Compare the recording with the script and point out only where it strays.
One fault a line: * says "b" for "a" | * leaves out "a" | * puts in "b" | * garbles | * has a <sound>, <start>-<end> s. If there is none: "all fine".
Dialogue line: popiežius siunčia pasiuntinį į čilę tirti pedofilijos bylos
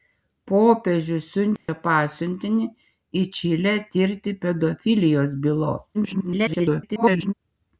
* has a dropout, 1.6-1.7 s
* garbles